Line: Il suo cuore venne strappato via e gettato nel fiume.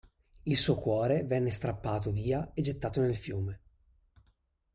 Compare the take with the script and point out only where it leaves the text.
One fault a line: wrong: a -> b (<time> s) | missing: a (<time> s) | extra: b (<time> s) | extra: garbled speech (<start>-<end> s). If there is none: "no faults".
no faults